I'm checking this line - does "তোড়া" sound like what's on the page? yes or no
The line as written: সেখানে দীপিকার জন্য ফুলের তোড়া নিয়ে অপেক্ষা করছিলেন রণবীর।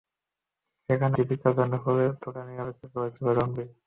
yes